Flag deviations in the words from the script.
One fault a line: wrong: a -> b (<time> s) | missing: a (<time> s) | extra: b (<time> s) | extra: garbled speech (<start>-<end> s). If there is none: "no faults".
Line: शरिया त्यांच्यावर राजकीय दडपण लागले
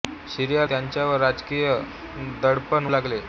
no faults